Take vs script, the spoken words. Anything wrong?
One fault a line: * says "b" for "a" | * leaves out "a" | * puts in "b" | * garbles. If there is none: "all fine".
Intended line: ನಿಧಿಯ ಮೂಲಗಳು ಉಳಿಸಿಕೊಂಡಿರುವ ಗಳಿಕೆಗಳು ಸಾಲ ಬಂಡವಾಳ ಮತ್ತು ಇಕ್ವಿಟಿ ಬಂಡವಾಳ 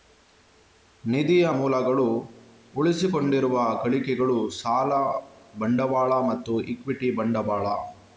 all fine